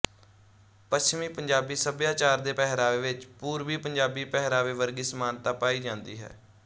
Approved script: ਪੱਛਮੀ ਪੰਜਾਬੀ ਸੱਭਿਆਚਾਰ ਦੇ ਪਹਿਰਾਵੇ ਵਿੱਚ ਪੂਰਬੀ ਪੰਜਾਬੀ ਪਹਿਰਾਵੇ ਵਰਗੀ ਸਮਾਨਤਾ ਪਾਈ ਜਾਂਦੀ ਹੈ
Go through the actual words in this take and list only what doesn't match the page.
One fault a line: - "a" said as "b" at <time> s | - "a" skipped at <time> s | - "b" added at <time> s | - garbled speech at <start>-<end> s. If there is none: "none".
none